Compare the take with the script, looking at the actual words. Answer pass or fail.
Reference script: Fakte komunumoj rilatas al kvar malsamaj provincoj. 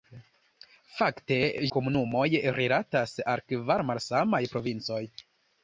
pass